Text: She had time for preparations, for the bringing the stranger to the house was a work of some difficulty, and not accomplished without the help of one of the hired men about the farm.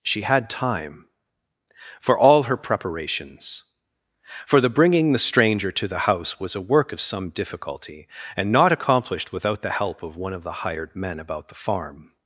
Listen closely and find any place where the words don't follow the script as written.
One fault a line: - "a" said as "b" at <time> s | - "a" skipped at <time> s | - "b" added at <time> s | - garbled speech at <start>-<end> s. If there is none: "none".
- "all her" added at 2.2 s